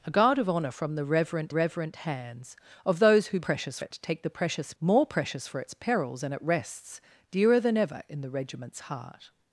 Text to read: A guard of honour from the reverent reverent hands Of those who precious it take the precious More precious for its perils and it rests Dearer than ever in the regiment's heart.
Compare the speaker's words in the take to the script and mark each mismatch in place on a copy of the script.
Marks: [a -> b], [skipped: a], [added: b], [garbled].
A guard of honour from the reverent reverent hands Of those who precious it take the precious More precious for its perils and it rests Dearer than ever in the regiment's heart.